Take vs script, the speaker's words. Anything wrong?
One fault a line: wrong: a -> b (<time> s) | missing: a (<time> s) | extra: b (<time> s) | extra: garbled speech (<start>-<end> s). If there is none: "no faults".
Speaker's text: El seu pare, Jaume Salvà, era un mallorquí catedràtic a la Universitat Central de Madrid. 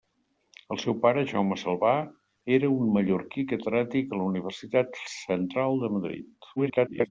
extra: garbled speech (6.6-7.1 s)